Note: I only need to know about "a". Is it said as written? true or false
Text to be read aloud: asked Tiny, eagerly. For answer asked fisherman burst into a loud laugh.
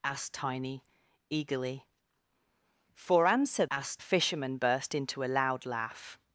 true